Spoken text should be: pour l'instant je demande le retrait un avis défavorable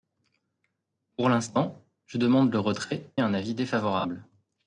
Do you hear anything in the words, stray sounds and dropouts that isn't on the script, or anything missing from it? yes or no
no